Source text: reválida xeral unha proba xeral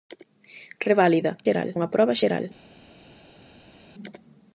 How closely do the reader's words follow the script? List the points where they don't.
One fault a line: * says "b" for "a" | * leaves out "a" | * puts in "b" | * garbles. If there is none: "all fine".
all fine